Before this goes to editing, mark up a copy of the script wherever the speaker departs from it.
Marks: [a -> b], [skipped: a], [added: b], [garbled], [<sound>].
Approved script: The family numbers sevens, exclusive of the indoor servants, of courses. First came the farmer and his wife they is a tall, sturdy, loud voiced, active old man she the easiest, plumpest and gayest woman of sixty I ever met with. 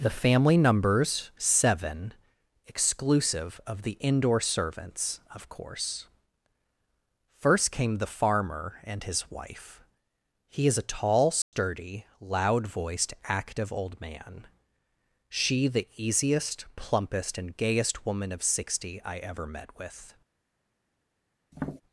The family numbers [sevens, -> seven] exclusive of the indoor servants, of [courses. -> course] First came the farmer and his wife [they -> he] is a tall, sturdy, [dropout] loud voiced, active old man she the easiest, plumpest and gayest woman of sixty I ever met with. [tap]